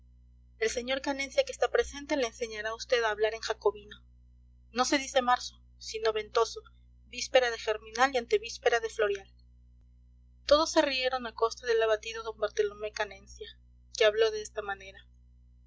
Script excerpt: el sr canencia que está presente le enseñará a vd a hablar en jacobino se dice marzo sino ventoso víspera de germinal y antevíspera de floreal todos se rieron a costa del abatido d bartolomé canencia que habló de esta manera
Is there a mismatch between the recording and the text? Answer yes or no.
yes